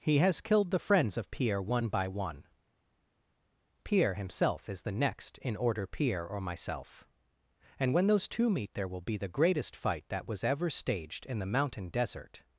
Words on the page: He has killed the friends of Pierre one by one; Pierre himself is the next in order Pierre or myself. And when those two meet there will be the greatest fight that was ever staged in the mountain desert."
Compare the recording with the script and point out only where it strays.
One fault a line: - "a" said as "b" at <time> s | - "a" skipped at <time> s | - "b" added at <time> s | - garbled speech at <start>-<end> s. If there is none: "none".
none